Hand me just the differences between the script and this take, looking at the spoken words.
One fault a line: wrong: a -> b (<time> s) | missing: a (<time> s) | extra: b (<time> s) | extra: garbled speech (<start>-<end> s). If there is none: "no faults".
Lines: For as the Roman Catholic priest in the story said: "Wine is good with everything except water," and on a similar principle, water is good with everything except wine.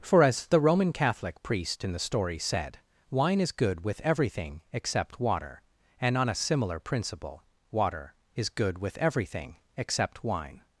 no faults